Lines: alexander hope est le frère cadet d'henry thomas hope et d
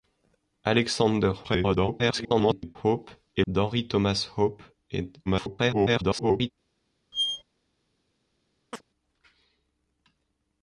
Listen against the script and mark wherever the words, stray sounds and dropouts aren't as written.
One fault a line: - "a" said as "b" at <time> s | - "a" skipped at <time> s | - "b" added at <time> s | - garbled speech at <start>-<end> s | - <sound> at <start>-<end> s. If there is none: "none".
- garbled speech at 1.4-2.8 s
- "le frère cadet" skipped at 3.4 s
- garbled speech at 5.3-6.5 s
- squeak at 7.1-7.4 s
- chirp at 8.7-8.8 s